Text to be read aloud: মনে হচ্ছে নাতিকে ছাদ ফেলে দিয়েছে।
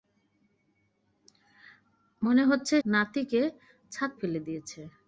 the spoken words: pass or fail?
pass